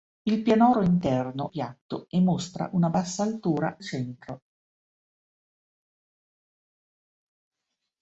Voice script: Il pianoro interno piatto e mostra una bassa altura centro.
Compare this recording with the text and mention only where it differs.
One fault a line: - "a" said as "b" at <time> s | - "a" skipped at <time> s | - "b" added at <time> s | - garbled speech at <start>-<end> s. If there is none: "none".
none